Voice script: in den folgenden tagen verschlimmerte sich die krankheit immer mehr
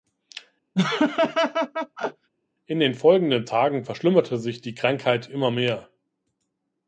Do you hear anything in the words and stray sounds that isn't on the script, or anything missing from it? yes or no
yes